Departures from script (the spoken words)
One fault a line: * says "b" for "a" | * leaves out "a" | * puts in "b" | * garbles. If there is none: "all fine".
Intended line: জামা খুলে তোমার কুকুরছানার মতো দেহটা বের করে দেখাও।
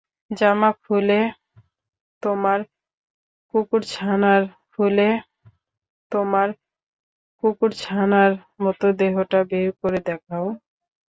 * puts in "খুলে তোমার কুকুরছানার"